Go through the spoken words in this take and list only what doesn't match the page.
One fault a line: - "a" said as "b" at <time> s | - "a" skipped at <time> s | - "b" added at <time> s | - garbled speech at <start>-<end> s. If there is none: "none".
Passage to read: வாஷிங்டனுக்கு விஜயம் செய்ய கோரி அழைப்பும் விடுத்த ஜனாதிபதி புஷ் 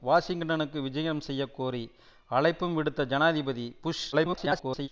- garbled speech at 4.1-4.9 s